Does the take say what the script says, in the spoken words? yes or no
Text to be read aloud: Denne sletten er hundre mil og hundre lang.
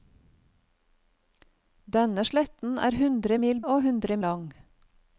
yes